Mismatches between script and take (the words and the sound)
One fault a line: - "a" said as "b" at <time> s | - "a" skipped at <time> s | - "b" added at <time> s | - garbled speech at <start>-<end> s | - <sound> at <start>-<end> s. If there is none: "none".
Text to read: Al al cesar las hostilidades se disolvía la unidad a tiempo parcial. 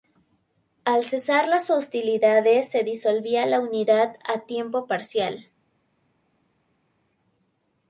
- "al" skipped at 1.0 s